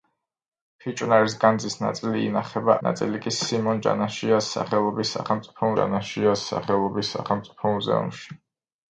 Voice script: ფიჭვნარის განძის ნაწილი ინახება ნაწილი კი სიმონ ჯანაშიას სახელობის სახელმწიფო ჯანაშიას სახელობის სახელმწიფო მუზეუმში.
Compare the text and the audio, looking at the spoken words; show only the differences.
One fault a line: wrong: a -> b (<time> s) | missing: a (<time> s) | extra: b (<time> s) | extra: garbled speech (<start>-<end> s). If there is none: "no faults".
no faults